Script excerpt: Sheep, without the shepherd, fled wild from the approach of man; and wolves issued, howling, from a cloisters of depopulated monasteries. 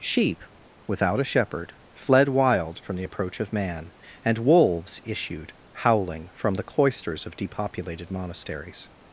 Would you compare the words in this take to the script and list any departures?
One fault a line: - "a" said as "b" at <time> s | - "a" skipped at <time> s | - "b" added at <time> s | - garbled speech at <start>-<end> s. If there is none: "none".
- "the" said as "a" at 1.2 s
- "a" said as "the" at 6.5 s